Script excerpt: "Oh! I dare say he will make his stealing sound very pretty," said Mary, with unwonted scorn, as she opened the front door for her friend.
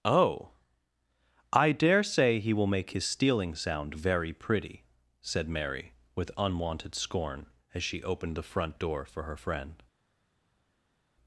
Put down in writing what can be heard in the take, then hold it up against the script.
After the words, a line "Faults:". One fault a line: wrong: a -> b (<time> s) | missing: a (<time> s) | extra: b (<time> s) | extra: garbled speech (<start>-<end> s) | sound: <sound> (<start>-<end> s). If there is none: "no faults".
"Oh! I dare say he will make his stealing sound very pretty," said Mary, with unwonted scorn, as she opened the front door for her friend.
Faults:
no faults